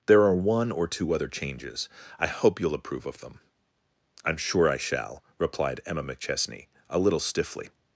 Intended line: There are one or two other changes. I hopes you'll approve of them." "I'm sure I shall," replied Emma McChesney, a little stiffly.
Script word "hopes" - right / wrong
wrong